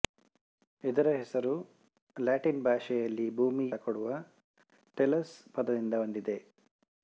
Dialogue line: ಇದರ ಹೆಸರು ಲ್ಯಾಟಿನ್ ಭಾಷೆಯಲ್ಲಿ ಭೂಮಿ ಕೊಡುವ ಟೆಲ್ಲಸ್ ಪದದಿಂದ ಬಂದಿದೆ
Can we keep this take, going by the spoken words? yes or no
yes